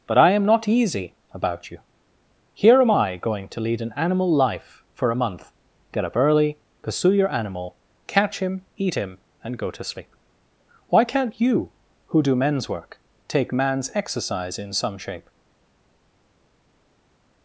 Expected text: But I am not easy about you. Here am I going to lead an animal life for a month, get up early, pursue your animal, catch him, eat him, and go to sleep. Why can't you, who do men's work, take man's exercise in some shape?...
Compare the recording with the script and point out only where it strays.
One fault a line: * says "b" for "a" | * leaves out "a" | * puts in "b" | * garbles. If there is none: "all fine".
all fine